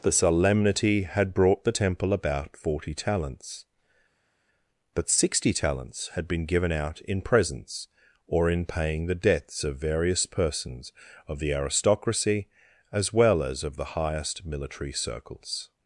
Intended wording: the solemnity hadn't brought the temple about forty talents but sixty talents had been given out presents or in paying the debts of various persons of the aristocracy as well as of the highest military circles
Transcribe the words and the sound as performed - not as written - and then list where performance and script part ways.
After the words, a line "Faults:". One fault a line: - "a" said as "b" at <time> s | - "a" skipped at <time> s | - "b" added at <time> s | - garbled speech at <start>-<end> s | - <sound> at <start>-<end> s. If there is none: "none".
the solemnity had brought the temple about forty talents but sixty talents had been given out in presents or in paying the debts of various persons of the aristocracy as well as of the highest military circles
Faults:
- "hadn't" said as "had" at 1.0 s
- "in" added at 7.0 s